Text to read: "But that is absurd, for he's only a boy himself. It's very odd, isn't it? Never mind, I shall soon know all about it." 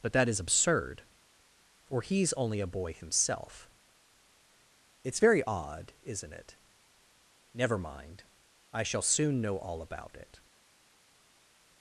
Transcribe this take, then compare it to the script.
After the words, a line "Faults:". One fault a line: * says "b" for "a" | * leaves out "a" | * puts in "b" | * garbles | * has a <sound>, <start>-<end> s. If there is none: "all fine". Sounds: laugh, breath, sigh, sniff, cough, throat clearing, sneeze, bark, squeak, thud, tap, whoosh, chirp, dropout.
"But that is absurd, for he's only a boy himself. It's very odd, isn't it? Never mind, I shall soon know all about it."
Faults:
all fine